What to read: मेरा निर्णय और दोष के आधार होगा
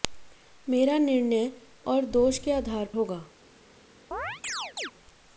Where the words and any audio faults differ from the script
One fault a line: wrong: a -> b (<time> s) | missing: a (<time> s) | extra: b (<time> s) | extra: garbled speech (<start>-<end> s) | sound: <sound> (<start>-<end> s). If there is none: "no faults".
sound: chirp (4.1-4.9 s)